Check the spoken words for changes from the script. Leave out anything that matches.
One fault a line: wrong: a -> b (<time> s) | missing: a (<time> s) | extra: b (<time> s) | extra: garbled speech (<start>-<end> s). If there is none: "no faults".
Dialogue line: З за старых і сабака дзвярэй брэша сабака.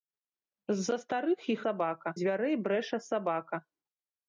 no faults